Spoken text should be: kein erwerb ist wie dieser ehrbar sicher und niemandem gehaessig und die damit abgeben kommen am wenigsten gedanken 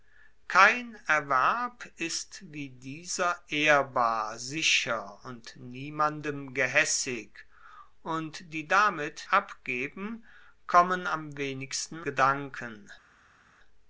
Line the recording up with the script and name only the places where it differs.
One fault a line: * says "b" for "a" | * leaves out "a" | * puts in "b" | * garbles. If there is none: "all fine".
all fine